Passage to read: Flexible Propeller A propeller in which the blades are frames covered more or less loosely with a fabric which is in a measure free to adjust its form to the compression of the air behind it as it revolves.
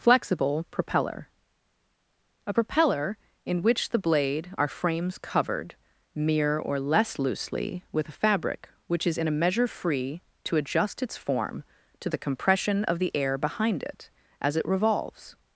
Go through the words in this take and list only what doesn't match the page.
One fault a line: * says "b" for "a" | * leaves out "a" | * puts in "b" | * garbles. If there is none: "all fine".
* says "blade" for "blades"
* says "mere" for "more"